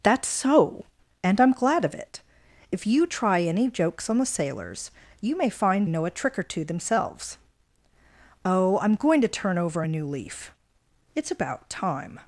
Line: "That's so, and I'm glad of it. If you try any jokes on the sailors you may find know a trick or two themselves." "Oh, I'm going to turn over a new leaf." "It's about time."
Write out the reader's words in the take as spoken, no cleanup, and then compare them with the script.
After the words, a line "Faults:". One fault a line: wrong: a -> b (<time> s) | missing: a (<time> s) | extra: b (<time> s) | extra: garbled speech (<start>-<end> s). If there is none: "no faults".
"That's so, and I'm glad of it. If you try any jokes on the sailors you may find know a trick or two themselves." "Oh, I'm going to turn over a new leaf." "It's about time."
Faults:
no faults